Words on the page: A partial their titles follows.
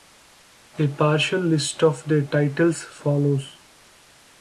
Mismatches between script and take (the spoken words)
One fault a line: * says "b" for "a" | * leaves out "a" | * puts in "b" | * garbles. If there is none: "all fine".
* puts in "list of"